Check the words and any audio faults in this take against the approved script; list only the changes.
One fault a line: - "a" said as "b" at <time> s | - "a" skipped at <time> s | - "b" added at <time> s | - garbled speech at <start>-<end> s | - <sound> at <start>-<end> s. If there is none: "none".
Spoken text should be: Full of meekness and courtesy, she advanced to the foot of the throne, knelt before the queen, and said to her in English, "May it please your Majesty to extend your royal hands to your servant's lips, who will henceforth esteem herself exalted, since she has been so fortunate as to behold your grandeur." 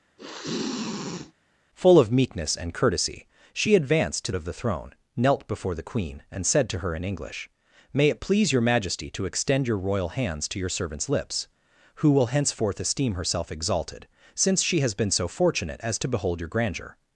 - sniff at 0.2-1.3 s
- "the foot" skipped at 4.3 s